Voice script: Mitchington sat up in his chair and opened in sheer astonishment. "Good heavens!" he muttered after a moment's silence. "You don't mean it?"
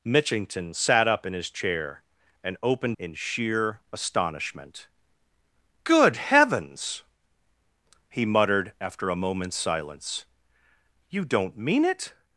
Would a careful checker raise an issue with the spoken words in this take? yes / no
no